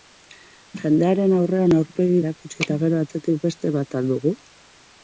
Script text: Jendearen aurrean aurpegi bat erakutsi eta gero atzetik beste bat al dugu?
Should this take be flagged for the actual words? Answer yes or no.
yes